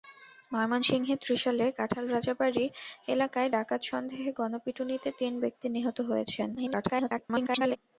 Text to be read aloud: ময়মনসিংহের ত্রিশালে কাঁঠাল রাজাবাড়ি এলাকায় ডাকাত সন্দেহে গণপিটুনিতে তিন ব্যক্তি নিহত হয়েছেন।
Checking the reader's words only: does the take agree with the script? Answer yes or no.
no